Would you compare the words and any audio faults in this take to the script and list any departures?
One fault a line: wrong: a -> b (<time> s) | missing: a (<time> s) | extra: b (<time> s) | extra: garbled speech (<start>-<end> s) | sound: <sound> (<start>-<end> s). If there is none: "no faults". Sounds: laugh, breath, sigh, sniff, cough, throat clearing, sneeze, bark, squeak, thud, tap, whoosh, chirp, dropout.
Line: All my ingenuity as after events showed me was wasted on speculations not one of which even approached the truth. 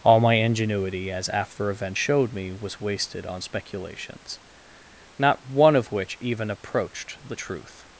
no faults